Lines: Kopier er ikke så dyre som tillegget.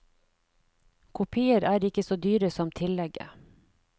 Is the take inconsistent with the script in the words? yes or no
no